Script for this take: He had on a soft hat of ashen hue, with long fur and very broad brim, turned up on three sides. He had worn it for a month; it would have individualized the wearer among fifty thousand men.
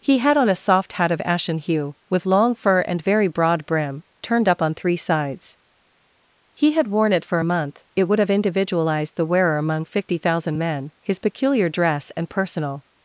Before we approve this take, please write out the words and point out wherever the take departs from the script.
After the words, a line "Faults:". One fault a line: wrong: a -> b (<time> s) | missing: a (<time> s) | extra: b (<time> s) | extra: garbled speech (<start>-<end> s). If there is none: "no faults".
He had on a soft hat of ashen hue, with long fur and very broad brim, turned up on three sides. He had worn it for a month; it would have individualized the wearer among fifty thousand men. His peculiar dress and personal
Faults:
extra: His peculiar dress and personal (11.0 s)